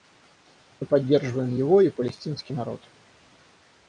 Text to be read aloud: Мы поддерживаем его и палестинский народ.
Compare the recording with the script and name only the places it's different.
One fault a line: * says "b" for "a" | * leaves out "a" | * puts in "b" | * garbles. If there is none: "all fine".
all fine